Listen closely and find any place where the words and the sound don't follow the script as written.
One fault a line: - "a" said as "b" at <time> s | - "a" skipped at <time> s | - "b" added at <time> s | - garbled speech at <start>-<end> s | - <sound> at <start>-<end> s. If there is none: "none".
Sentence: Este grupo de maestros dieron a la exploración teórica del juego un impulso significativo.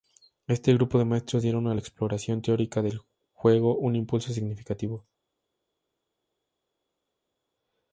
none